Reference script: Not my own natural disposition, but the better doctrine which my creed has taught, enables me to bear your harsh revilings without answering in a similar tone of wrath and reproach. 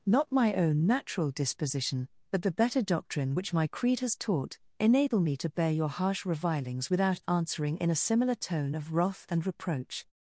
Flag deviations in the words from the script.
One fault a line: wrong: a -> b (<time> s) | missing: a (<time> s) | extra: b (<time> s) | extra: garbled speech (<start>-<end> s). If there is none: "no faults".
wrong: enables -> enable (4.8 s)